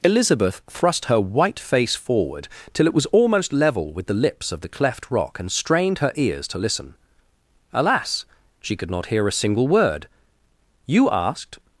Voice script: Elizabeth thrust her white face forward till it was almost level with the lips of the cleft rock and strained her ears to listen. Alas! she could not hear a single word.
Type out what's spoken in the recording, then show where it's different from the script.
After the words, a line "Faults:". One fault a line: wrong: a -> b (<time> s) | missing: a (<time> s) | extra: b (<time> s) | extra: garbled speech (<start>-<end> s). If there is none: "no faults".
Elizabeth thrust her white face forward till it was almost level with the lips of the cleft rock and strained her ears to listen. Alas! she could not hear a single word. "You asked
Faults:
extra: You asked (10.9 s)